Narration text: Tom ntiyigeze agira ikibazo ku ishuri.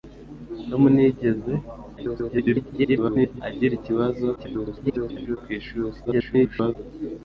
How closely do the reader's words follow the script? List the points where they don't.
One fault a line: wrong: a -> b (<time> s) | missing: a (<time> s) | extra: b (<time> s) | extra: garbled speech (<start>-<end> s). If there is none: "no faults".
extra: garbled speech (2.0-3.4 s)
extra: garbled speech (4.4-5.4 s)
extra: garbled speech (6.0-6.8 s)